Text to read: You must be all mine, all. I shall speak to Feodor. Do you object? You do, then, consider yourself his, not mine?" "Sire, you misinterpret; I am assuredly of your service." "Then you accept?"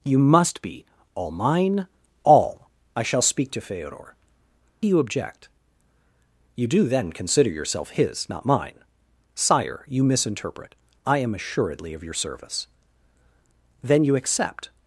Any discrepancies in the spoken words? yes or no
no